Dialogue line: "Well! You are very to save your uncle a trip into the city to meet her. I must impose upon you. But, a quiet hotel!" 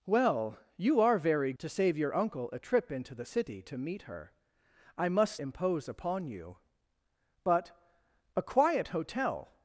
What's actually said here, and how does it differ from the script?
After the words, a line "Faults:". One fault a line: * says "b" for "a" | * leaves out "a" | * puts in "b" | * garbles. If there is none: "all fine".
"Well! You are very to save your uncle a trip into the city to meet her. I must impose upon you. But, a quiet hotel!"
Faults:
all fine